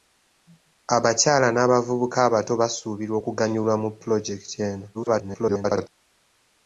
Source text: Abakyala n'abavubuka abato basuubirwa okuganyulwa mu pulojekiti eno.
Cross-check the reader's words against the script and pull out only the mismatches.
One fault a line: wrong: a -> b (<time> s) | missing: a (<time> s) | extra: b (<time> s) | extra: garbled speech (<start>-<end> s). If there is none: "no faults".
extra: garbled speech (4.9-5.9 s)